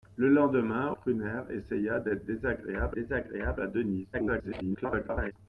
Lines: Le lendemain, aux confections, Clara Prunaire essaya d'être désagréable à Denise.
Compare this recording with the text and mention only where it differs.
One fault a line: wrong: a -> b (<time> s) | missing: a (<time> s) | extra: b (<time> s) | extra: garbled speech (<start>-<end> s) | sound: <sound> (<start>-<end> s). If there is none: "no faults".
missing: aux confections Clara (0.9 s)
extra: désagréable (2.9 s)
extra: garbled speech (4.1-5.3 s)